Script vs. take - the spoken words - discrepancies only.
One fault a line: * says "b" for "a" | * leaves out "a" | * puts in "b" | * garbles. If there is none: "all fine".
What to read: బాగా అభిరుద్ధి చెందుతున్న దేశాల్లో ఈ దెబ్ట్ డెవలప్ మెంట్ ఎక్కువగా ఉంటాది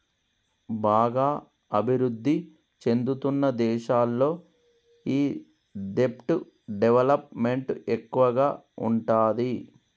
all fine